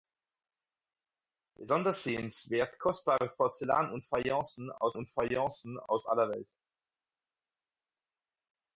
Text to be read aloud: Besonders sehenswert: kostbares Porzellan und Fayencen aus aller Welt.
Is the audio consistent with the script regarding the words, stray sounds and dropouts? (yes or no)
no